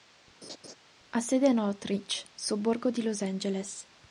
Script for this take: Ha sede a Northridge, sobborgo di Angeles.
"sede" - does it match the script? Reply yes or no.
yes